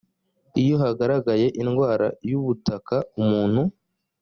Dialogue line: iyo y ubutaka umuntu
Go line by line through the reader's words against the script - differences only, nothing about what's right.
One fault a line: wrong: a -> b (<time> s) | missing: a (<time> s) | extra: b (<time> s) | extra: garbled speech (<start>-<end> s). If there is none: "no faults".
extra: hagaragaye indwara (0.8 s)